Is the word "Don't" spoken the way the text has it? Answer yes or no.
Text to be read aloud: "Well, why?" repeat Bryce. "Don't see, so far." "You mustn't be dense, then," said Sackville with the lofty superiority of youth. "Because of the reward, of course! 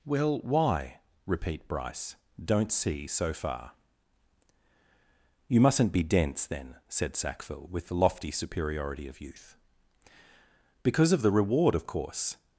yes